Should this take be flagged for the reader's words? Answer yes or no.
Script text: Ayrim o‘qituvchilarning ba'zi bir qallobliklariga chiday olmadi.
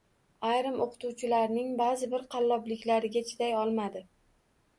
no